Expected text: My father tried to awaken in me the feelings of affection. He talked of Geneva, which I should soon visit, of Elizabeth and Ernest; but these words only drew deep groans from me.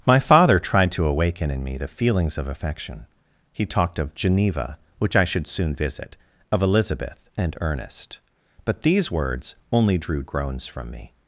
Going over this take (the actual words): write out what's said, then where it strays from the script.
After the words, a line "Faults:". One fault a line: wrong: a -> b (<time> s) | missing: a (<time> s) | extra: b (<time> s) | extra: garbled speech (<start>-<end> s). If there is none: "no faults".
My father tried to awaken in me the feelings of affection. He talked of Geneva, which I should soon visit, of Elizabeth and Ernest; but these words only drew groans from me.
Faults:
missing: deep (10.2 s)